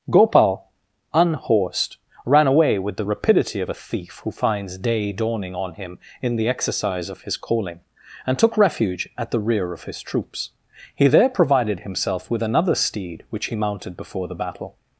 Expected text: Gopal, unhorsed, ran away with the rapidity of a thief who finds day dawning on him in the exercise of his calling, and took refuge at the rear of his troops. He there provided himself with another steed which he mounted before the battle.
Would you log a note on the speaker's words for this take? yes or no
no